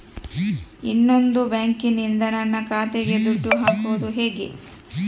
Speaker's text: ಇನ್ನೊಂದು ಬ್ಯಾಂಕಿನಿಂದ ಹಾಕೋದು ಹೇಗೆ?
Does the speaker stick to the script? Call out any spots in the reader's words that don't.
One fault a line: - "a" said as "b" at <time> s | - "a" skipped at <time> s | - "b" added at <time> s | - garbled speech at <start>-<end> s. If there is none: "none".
- "ನನ್ನ ಖಾತೆಗೆ ದುಡ್ಡು" added at 2.3 s